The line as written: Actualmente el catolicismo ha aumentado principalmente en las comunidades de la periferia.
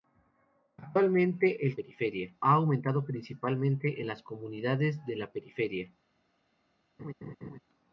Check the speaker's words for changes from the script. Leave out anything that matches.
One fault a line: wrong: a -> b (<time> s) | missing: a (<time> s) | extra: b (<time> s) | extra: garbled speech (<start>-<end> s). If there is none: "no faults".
wrong: catolicismo -> periferia (1.7 s)